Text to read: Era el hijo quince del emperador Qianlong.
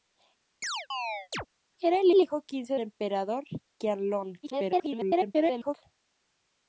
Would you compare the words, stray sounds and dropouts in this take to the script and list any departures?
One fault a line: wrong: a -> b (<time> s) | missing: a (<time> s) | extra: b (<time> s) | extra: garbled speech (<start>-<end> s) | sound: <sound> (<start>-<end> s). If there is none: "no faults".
sound: chirp (0.6-1.5 s)
extra: el (2.1 s)
missing: del (2.7 s)
extra: garbled speech (4.4-5.7 s)